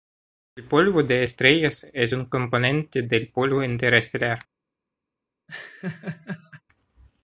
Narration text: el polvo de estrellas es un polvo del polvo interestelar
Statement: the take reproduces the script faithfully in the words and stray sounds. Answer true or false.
false